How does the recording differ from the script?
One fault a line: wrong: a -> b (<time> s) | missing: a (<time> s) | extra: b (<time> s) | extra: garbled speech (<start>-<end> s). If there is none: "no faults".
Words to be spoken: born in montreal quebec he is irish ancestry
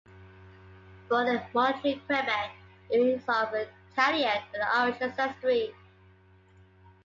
extra: of italian and (3.3 s)